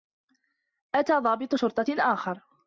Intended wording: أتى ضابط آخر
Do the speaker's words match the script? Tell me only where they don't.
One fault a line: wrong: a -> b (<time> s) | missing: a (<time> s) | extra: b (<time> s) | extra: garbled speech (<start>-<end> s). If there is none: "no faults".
extra: شرطة (1.5 s)